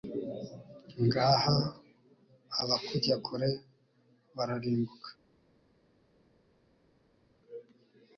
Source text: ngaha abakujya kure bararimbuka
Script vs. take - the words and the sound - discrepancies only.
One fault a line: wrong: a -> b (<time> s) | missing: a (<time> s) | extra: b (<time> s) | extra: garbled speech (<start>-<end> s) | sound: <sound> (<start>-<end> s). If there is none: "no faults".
no faults